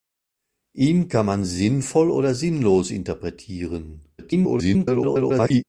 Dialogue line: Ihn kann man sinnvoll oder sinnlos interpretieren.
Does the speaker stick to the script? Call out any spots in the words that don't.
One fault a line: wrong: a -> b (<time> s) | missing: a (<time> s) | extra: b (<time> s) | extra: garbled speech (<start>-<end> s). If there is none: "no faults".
extra: garbled speech (4.2-5.6 s)